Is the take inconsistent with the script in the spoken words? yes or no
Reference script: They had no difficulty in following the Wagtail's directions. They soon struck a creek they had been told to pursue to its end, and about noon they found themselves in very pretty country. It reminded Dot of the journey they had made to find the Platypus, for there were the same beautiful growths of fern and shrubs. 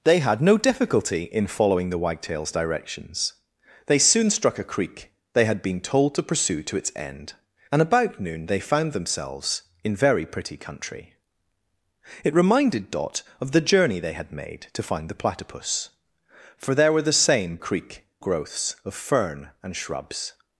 yes